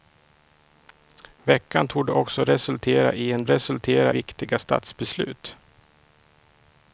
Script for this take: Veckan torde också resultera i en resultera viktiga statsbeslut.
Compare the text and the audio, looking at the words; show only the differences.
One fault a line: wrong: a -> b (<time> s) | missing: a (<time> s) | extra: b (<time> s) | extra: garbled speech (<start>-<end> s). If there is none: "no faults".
no faults